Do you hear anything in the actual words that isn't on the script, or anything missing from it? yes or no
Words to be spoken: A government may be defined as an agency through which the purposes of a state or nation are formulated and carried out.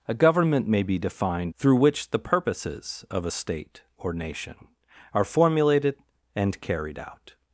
yes